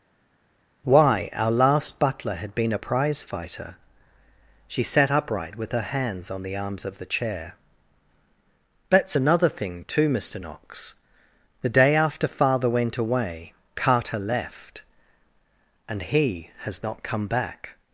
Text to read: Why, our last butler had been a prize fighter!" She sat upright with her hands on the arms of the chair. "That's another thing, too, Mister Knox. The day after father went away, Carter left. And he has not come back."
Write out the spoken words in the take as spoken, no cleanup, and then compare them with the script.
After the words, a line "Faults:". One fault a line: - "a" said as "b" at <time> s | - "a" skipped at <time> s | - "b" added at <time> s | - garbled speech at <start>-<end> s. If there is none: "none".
Why, our last butler had been a prize fighter!" She sat upright with her hands on the arms of the chair. "That's another thing, too, Mister Knox. The day after father went away, Carter left. And he has not come back."
Faults:
none